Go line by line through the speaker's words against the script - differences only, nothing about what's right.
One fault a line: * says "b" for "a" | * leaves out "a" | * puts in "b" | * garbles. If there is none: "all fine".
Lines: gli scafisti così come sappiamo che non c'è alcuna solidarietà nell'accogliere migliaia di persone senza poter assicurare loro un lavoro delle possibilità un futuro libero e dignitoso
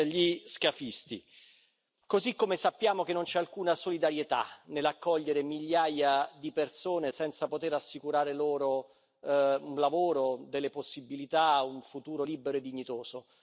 all fine